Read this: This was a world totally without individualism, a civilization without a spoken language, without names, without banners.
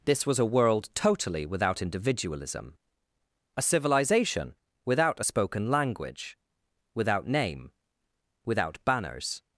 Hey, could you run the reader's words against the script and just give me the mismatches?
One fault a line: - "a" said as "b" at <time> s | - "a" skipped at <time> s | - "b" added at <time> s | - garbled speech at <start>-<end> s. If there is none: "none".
- "names" said as "name" at 7.3 s